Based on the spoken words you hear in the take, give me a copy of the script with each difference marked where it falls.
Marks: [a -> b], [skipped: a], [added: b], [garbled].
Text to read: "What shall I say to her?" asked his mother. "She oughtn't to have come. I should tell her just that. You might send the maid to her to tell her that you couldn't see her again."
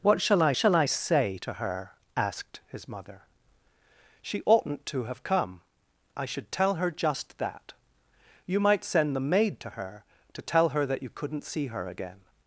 "What shall I [added: shall I] say to her?" asked his mother. "She oughtn't to have come. I should tell her just that. You might send the maid to her to tell her that you couldn't see her again."